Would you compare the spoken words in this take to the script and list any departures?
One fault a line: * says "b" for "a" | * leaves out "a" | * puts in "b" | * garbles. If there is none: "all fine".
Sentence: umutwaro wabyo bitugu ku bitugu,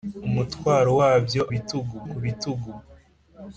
all fine